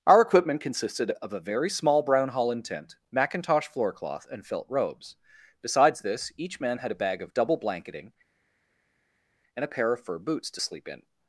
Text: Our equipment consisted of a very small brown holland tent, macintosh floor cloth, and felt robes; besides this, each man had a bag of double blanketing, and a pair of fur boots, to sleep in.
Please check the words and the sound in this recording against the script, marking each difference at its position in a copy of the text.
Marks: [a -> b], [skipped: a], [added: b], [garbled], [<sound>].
Our equipment consisted of a very small brown holland tent, macintosh floor cloth, and felt robes; besides this, each man had a bag of double blanketing, and a pair of fur boots, to sleep in.